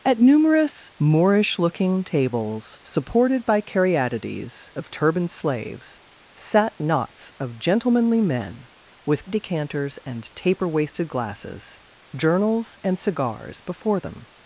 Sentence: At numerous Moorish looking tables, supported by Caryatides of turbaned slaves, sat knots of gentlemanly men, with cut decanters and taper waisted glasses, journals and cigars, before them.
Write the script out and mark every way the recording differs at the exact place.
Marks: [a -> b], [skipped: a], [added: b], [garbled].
At numerous Moorish looking tables, supported by Caryatides of turbaned slaves, sat knots of gentlemanly men, with [skipped: cut] decanters and taper waisted glasses, journals and cigars, before them.